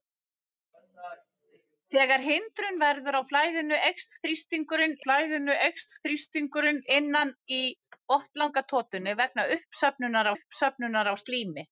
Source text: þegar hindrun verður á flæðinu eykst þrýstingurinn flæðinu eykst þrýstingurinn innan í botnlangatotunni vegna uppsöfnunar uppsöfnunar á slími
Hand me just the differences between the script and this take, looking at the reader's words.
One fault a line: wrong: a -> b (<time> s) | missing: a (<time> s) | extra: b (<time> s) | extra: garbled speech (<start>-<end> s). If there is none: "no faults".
no faults